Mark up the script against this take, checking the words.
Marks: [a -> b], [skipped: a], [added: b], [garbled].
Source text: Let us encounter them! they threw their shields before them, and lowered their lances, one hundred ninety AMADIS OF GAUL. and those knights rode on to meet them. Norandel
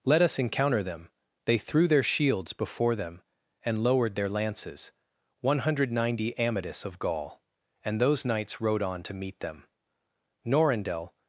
Let us encounter them! they threw their shields before them, and lowered their lances, one hundred ninety AMADIS OF GAUL. and those knights rode on to meet them. Norandel